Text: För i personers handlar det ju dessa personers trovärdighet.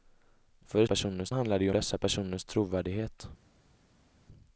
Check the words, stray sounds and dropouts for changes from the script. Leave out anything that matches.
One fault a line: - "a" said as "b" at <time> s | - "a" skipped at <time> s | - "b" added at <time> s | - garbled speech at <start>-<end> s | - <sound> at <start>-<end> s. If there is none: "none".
none